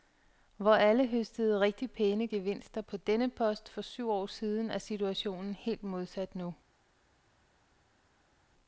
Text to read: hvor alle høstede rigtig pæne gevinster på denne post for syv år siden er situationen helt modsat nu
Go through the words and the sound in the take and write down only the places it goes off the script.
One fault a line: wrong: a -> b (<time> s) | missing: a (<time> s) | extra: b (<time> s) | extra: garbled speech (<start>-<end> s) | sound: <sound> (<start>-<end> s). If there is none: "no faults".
no faults